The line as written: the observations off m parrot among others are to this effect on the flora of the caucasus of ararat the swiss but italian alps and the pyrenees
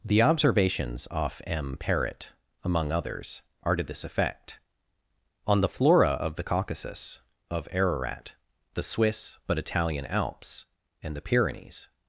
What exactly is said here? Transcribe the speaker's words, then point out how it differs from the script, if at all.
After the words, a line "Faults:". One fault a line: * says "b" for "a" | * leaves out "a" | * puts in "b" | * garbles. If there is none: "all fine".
the observations off m parrot among others are to this effect on the flora of the caucasus of ararat the swiss but italian alps and the pyrenees
Faults:
all fine